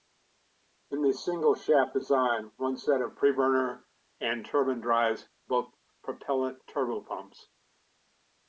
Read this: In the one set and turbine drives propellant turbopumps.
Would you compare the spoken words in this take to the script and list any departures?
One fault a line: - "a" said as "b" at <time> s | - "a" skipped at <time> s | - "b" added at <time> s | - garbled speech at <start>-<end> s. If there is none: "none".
- "single shaft design" added at 1.1 s
- "of preburner" added at 3.0 s
- "both" added at 5.5 s